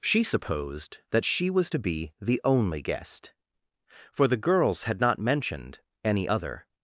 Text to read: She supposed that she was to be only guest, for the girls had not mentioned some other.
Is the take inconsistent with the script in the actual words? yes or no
yes